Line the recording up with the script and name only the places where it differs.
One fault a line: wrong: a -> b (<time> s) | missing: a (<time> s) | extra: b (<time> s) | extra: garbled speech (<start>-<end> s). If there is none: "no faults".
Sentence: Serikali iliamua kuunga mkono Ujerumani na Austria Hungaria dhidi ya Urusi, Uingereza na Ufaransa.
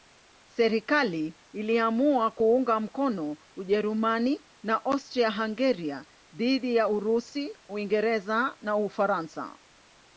no faults